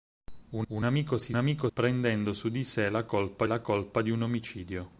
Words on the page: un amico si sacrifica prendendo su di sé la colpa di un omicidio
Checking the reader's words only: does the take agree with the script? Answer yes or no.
no